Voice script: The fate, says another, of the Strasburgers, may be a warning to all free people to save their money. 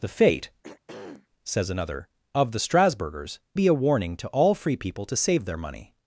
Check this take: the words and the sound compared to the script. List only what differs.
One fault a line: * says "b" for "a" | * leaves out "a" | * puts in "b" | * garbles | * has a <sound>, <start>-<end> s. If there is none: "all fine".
* has a throat clearing, 0.6-1.3 s
* leaves out "may"